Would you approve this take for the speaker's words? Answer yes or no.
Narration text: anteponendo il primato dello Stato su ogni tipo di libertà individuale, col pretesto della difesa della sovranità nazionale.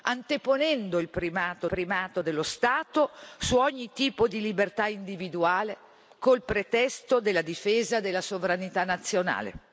no